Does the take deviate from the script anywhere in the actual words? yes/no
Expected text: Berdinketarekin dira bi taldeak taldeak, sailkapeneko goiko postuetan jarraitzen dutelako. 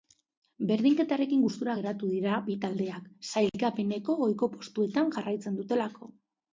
yes